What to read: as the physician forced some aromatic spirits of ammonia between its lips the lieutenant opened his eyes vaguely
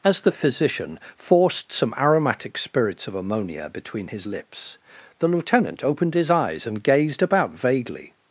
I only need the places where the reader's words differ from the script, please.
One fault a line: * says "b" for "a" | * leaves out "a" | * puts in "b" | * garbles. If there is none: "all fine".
* says "his" for "its"
* puts in "and gazed about"